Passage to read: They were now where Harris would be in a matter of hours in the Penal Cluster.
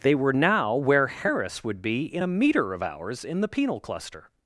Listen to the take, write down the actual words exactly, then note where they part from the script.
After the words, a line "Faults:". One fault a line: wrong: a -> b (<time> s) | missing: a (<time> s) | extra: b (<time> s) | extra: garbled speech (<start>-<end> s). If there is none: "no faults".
They were now where Harris would be in a meter of hours in the Penal Cluster.
Faults:
wrong: matter -> meter (2.3 s)